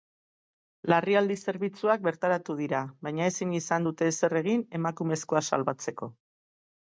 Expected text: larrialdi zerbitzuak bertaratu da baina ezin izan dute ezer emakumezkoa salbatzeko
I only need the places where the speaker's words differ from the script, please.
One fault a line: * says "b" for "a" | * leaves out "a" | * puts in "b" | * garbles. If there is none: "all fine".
* says "dira" for "da"
* puts in "egin"